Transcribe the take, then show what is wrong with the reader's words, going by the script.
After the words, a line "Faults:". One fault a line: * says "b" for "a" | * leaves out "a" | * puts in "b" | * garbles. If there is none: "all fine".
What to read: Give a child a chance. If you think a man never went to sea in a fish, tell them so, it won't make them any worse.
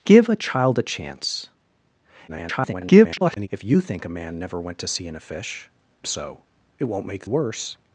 Give a child a chance. [garbled] If you think a man never went to sea in a fish, so, it won't make worse.
Faults:
* garbles
* leaves out "tell them"
* leaves out "them any"